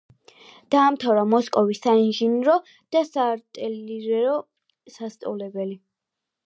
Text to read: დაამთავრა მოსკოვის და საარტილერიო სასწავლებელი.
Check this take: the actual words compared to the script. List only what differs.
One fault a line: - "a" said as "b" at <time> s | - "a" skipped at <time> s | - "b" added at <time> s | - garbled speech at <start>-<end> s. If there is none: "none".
- "საინჟინრო" added at 1.9 s